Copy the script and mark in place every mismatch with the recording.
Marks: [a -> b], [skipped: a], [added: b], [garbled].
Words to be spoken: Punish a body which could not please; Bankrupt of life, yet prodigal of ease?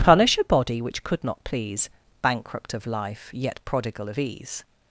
Punish a body which could not please; Bankrupt of life, yet prodigal of ease?